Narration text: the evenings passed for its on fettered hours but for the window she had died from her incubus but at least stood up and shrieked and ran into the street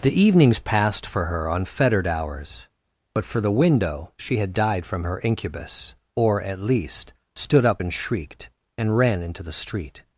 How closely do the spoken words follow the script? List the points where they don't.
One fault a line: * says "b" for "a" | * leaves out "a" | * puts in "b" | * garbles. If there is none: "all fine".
* says "her" for "its"
* says "or" for "but"